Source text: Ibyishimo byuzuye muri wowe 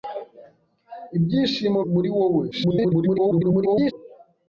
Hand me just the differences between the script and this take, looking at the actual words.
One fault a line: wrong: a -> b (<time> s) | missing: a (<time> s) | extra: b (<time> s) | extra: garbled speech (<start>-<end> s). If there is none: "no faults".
missing: byuzuye (1.8 s)
extra: garbled speech (2.5-3.9 s)